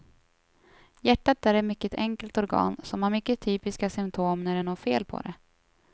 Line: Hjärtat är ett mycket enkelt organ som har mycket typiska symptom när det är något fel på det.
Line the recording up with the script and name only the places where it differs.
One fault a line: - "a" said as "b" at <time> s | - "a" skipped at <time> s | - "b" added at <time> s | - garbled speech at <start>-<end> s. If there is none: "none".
none